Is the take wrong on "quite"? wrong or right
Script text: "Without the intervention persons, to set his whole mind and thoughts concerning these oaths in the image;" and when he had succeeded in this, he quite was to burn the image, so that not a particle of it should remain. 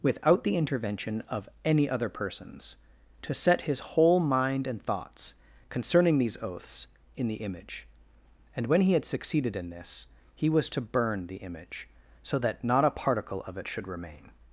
wrong